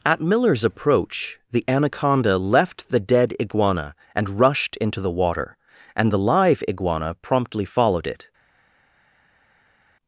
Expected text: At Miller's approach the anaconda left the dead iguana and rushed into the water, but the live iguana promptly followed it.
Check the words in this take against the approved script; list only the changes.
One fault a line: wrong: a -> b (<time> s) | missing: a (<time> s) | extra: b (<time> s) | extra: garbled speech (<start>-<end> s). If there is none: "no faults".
wrong: but -> and (6.0 s)